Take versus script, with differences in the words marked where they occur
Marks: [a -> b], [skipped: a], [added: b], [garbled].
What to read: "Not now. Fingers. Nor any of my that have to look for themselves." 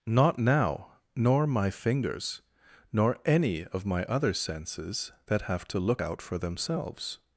"Not now. [added: Nor my] Fingers. Nor any of my [added: other senses] that have to look [added: out] for themselves."